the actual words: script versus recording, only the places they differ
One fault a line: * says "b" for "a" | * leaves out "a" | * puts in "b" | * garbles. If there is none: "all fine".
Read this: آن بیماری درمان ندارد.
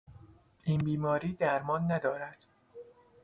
* says "این" for "آن"